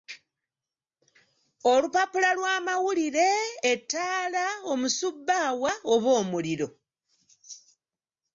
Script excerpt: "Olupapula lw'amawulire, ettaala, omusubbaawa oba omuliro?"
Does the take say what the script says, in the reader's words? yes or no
yes